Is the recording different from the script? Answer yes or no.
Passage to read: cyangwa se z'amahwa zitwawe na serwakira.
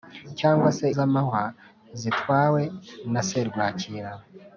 no